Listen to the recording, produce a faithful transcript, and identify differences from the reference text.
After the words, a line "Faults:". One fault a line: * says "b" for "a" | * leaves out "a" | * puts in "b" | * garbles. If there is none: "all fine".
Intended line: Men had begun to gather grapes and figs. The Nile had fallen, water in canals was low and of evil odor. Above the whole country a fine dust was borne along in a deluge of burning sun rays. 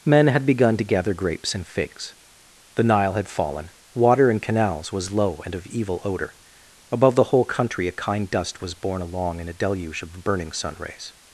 Men had begun to gather grapes and figs. The Nile had fallen, water in canals was low and of evil odor. Above the whole country a kind dust was borne along in a deluge of burning sun rays.
Faults:
* says "kind" for "fine"